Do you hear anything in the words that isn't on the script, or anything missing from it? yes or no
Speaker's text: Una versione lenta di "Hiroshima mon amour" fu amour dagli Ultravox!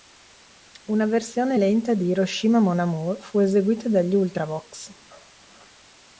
yes